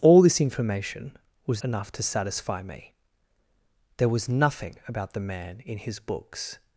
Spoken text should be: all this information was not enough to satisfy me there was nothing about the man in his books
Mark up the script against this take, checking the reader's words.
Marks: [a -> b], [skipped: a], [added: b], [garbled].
all this information was [skipped: not] enough to satisfy me there was nothing about the man in his books